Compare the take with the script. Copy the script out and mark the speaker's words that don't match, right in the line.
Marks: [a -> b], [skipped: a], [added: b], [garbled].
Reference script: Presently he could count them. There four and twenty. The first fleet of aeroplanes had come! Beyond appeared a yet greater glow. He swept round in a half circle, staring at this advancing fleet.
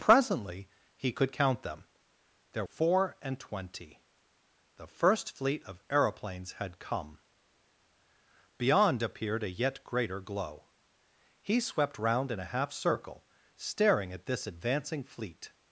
Presently he could count them. There four and twenty. The first fleet of aeroplanes had come! Beyond appeared a yet greater glow. He swept round in a half circle, staring at this advancing fleet.